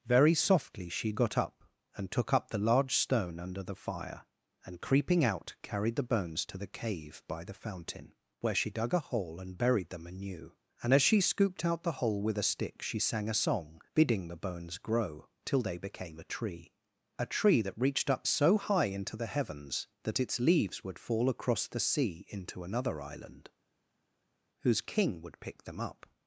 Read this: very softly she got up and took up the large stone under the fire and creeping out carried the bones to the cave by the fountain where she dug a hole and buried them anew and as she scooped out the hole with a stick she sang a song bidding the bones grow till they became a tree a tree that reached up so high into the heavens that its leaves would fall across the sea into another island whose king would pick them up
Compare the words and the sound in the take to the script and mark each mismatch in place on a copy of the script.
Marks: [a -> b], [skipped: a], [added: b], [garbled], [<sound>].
very softly she got up and took up the large stone under the fire and creeping out carried the bones to the cave by the fountain where she dug a hole and buried them anew and as she scooped out the hole with a stick she sang a song bidding the bones grow till they became a tree a tree that reached up so high into the heavens that its leaves would fall across the sea into another island whose king would pick them up